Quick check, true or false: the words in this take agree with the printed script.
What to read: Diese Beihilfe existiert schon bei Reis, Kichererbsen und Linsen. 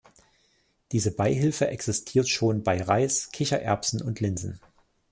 true